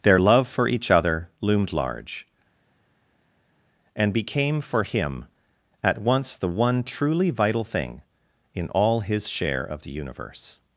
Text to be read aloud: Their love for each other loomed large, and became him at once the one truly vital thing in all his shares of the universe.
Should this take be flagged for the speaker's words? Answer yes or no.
yes